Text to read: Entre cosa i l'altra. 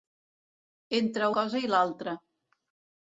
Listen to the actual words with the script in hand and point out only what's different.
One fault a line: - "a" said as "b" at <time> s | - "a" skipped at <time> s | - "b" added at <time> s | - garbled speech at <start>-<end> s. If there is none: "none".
none